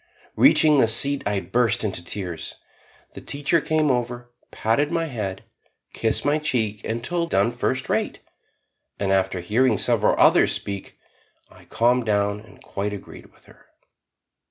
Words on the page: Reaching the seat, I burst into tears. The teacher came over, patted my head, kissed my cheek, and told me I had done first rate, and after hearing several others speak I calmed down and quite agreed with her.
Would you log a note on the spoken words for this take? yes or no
yes